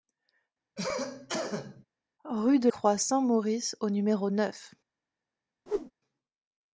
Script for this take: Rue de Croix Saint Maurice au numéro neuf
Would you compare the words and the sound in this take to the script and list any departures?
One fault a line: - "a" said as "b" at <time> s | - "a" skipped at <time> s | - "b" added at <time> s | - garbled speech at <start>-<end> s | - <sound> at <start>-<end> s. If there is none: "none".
- cough at 0.8-1.8 s
- whoosh at 5.7-5.9 s